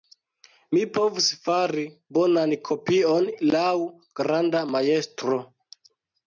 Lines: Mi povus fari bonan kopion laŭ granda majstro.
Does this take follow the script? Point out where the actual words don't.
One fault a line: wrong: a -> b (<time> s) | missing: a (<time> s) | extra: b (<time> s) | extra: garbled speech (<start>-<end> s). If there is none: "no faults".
no faults